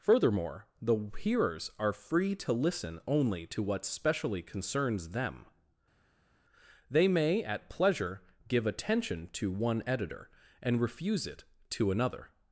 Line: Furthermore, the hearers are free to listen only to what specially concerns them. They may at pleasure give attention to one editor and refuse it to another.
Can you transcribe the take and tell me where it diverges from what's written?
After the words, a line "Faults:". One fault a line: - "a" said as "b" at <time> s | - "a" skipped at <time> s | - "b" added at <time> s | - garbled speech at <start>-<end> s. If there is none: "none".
Furthermore, the hearers are free to listen only to what specially concerns them. They may at pleasure give attention to one editor and refuse it to another.
Faults:
none